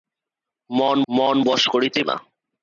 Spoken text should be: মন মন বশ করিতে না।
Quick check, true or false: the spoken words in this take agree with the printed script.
true